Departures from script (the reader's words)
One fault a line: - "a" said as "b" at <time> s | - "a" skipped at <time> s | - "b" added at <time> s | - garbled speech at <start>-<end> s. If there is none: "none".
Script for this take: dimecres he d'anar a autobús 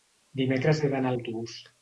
none